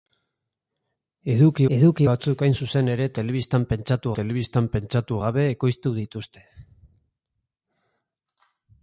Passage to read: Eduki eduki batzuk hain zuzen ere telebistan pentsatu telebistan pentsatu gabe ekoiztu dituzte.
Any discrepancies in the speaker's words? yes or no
no